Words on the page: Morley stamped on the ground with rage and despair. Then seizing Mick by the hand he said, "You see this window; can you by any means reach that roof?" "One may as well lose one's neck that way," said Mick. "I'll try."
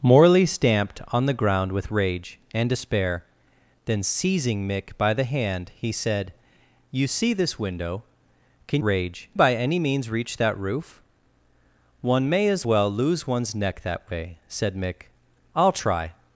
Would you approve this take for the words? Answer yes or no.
no